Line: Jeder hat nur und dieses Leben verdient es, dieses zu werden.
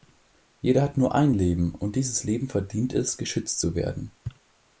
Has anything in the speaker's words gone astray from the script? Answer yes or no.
yes